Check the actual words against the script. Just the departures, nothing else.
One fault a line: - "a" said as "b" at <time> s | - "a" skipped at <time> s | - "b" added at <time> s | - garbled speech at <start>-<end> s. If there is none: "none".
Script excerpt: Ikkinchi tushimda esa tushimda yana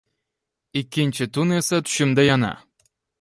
- "tushimda" said as "tun" at 1.3 s